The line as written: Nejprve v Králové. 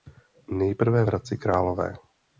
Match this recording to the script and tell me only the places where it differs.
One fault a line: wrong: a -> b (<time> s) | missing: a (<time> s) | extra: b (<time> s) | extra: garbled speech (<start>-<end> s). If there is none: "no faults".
extra: Hradci (1.0 s)